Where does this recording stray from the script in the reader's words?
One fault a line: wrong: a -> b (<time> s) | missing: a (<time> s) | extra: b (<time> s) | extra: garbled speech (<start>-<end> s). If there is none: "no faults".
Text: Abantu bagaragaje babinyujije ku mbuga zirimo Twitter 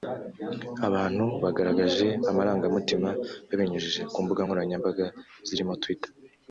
extra: amarangamutima (2.3 s)
extra: nkoranyambaga (4.4 s)